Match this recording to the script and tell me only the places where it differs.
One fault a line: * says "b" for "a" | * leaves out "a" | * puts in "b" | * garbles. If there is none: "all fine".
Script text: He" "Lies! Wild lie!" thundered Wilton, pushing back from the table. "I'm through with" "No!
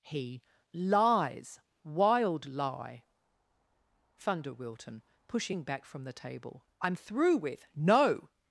* says "thunder" for "thundered"